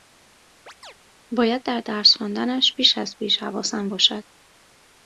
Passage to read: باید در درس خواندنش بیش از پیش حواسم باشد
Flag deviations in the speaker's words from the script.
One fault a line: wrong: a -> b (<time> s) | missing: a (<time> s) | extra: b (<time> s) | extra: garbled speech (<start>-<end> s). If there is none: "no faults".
no faults